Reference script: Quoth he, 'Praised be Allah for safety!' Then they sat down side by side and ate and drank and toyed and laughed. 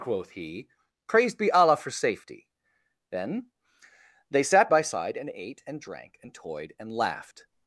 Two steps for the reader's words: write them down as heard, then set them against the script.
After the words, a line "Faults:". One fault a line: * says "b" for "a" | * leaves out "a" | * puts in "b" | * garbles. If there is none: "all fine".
Quoth he, 'Praised be Allah for safety!' Then they sat by side and ate and drank and toyed and laughed.
Faults:
* leaves out "down side"